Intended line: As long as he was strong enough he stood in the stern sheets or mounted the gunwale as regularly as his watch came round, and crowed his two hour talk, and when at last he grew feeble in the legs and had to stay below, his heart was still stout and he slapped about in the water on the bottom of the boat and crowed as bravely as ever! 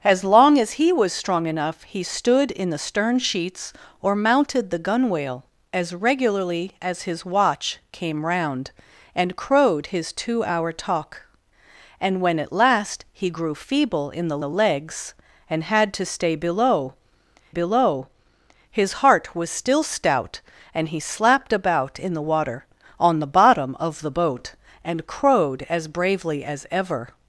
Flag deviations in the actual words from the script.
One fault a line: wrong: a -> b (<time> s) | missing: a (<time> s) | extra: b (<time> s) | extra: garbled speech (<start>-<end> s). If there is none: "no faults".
extra: the (14.4 s)
extra: below (17.5 s)